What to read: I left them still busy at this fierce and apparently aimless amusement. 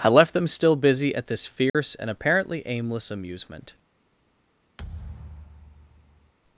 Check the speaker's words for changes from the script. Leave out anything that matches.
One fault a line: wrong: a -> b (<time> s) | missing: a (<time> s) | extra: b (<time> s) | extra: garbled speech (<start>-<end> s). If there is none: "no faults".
no faults